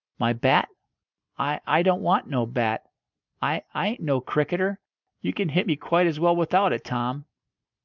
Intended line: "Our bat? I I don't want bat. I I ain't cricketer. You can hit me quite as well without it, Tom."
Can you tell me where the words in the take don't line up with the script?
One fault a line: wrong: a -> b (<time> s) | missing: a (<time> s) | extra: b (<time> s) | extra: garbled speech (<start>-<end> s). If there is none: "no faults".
wrong: Our -> My (0.2 s)
extra: no (2.2 s)
extra: no (4.0 s)